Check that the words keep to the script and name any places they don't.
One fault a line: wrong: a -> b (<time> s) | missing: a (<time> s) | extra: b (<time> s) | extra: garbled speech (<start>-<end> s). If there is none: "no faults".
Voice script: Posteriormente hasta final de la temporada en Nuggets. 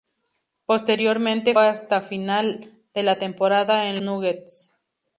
no faults